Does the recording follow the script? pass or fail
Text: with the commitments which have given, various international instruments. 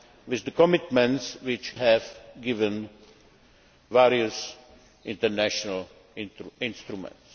pass